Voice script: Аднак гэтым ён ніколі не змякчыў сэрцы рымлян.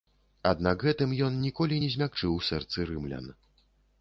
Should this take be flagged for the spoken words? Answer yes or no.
no